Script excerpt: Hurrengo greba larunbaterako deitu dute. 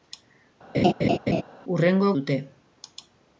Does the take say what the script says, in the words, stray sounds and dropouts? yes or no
no